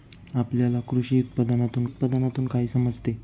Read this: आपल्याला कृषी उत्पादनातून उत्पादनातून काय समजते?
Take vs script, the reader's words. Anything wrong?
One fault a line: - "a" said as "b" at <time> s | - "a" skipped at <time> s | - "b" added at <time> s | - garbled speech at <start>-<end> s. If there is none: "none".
none